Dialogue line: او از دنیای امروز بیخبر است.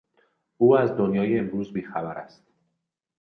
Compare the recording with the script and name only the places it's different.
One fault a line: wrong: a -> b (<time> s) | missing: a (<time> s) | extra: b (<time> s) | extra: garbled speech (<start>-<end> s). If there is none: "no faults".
no faults